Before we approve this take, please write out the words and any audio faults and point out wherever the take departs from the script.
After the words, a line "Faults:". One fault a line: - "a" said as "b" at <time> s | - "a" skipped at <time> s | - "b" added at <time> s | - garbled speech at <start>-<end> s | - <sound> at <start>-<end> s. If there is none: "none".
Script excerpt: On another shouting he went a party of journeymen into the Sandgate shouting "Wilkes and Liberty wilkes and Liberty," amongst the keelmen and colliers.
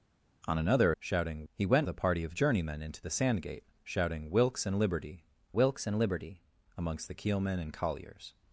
On another shouting he went a party of journeymen into the Sandgate shouting "Wilkes and Liberty wilkes and Liberty," amongst the keelmen and colliers.
Faults:
none